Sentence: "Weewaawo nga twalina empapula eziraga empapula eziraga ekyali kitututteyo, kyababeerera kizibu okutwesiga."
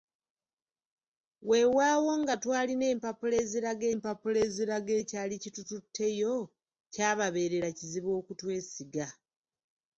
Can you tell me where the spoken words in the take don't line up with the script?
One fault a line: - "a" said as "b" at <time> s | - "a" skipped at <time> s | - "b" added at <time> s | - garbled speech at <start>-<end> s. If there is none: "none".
none